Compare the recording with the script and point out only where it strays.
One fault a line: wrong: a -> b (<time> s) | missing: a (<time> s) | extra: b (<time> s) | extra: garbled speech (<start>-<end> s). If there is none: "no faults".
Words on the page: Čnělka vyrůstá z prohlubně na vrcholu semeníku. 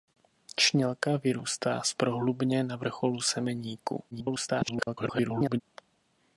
extra: garbled speech (4.1-5.6 s)